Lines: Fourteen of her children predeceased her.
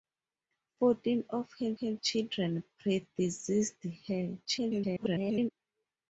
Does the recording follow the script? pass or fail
fail